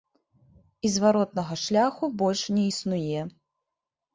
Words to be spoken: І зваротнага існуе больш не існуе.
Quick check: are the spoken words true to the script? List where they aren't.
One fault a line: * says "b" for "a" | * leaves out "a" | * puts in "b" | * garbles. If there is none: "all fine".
* says "шляху" for "існуе"